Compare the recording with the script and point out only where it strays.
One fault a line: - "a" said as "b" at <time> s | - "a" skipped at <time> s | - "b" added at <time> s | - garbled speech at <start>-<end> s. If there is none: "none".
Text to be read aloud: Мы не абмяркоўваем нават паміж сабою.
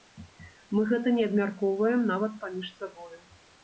- "гэта" added at 0.9 s